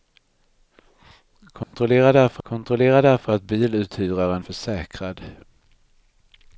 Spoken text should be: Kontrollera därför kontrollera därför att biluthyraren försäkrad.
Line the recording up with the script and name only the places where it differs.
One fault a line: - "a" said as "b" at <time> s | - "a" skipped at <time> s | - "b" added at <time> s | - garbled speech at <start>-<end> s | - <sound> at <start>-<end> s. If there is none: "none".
- dropout at 1.6-1.7 s